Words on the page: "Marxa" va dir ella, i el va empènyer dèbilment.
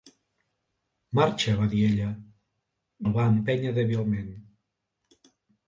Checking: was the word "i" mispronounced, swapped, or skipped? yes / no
yes